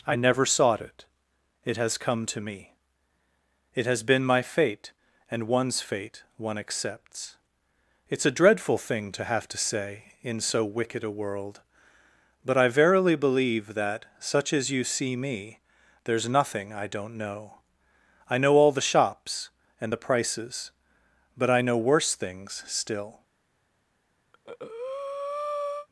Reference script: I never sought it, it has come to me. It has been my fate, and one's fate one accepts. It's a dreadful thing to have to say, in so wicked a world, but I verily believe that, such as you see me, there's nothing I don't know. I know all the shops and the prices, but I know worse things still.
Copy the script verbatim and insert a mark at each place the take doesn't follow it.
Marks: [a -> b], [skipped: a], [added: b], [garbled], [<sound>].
I never sought it, it has come to me. It has been my fate, and one's fate one accepts. It's a dreadful thing to have to say, in so wicked a world, but I verily believe that, such as you see me, there's nothing I don't know. I know all the shops and the prices, but I know worse things still. [breath]